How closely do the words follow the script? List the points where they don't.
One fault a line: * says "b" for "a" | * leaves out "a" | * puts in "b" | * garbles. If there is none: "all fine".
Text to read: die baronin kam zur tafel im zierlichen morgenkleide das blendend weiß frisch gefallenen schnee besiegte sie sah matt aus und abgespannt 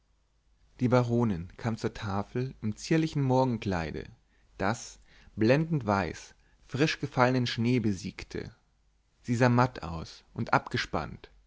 all fine